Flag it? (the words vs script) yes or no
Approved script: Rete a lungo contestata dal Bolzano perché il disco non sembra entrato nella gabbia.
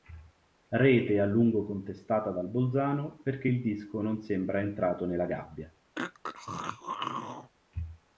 no